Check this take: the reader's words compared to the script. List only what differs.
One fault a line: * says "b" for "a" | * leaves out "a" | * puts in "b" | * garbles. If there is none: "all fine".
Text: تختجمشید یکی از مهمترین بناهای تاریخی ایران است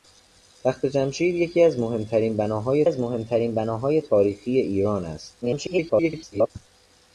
* puts in "از مهمترین بناهای"
* garbles